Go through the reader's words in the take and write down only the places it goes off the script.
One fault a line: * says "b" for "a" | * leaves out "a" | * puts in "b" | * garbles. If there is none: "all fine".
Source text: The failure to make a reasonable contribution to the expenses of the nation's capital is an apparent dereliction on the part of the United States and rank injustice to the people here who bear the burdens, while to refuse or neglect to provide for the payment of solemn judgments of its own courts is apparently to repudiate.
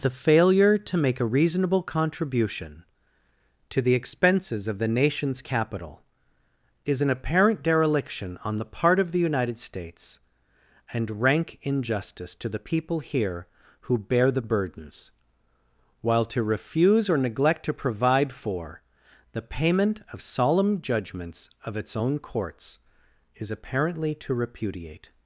all fine